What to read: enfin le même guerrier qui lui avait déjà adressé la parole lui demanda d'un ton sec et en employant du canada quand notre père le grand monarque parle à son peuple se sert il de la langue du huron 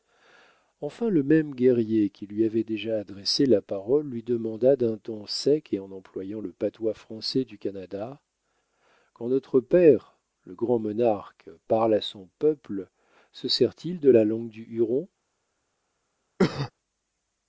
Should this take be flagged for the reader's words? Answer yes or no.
yes